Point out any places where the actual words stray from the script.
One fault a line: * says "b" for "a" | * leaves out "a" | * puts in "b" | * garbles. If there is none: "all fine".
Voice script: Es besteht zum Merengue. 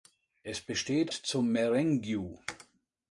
all fine